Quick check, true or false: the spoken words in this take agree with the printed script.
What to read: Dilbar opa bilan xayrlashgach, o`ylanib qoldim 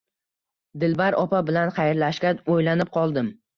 true